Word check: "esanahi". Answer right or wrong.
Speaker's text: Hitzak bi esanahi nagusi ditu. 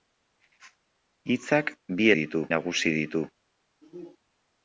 wrong